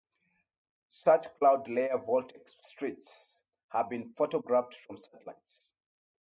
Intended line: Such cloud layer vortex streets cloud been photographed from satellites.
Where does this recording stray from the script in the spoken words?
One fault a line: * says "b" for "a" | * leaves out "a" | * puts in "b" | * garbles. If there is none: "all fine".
* says "have" for "cloud"